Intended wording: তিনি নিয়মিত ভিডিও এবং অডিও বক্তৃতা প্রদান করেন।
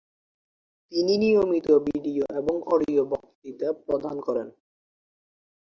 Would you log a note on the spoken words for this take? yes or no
no